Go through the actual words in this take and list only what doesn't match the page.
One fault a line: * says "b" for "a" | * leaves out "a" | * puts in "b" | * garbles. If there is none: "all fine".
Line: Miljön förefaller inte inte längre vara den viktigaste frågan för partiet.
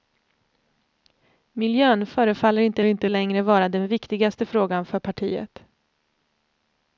all fine